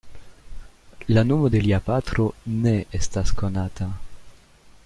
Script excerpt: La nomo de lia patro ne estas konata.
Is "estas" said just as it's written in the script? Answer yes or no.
yes